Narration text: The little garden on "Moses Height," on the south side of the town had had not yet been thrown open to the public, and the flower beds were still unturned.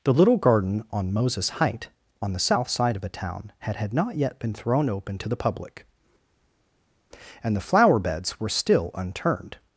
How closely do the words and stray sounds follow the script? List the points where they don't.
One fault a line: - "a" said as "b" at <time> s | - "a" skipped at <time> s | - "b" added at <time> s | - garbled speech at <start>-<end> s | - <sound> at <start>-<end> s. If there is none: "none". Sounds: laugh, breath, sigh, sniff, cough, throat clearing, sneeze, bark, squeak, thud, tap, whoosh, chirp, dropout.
none